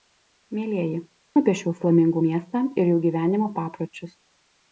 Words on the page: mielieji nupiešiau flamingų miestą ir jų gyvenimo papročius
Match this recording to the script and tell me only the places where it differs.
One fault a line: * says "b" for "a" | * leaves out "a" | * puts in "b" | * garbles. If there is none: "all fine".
all fine